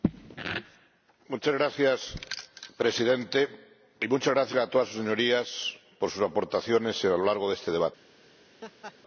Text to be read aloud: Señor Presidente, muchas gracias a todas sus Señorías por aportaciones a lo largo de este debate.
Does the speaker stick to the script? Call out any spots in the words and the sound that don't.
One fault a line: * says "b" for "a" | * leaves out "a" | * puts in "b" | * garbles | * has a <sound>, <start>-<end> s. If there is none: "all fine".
* puts in "sus"
* has a laugh, 8.6-9.0 s